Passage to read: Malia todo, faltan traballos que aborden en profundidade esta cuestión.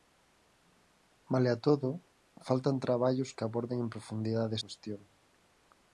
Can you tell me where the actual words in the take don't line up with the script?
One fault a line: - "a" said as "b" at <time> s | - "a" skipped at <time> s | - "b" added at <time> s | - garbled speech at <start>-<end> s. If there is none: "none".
- "esta" skipped at 4.5 s